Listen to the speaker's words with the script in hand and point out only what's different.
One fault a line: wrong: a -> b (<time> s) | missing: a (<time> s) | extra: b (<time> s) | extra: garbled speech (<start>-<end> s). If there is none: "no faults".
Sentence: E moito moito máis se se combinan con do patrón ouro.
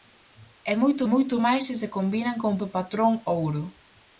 no faults